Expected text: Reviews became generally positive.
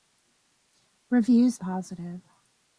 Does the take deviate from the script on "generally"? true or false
true